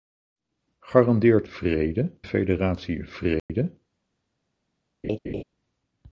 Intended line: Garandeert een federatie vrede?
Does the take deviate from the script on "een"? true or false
true